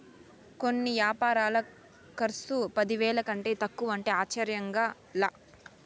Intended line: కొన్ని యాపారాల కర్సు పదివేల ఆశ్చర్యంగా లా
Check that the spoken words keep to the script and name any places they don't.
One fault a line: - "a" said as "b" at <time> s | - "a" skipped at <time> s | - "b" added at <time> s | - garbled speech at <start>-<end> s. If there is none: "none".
- "కంటే తక్కువంటే" added at 3.3 s